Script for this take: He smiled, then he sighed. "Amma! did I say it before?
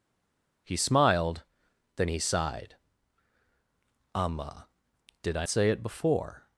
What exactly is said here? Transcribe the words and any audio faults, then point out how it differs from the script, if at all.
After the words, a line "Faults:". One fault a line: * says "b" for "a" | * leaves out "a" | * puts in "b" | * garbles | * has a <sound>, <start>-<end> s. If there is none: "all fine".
He smiled, then he sighed. "Amma! did I say it before?
Faults:
all fine